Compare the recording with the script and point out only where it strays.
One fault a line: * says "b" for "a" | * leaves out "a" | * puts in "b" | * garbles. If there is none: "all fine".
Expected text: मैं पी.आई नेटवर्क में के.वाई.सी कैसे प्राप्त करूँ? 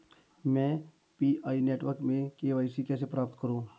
all fine